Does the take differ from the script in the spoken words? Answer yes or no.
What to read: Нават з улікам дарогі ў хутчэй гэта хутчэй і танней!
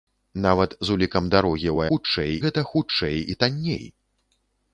no